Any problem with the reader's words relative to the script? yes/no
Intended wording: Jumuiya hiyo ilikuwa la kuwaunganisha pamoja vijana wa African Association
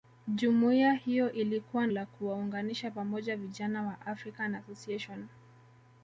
no